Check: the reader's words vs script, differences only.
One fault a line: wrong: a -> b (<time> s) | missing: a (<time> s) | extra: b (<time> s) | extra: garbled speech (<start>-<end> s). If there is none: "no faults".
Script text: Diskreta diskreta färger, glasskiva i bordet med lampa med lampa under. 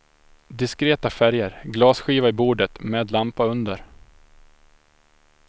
missing: diskreta (1.1 s)
missing: med lampa (3.5 s)